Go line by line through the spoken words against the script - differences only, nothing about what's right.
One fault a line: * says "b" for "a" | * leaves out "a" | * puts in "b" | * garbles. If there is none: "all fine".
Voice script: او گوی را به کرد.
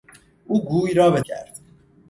all fine